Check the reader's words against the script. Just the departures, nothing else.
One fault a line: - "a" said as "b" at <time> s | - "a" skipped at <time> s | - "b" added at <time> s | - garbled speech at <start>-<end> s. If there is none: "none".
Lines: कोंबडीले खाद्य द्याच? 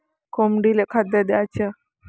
none